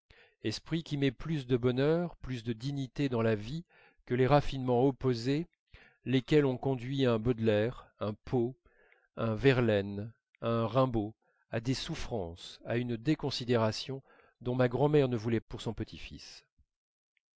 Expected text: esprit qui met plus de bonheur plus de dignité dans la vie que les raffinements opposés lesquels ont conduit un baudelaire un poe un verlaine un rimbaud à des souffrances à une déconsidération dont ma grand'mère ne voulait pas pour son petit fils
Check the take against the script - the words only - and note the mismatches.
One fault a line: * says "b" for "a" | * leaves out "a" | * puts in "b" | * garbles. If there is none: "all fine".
* leaves out "pas"